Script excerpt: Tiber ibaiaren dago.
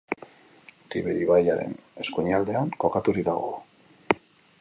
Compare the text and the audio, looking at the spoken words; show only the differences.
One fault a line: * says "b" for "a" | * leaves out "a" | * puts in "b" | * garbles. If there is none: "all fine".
* puts in "eskuinaldean kokaturik"